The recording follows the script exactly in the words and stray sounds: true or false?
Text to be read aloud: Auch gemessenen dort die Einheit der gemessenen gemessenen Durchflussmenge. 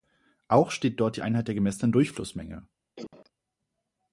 false